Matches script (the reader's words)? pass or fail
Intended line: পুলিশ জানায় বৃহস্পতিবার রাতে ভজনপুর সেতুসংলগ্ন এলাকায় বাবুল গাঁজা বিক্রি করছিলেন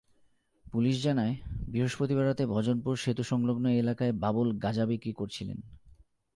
pass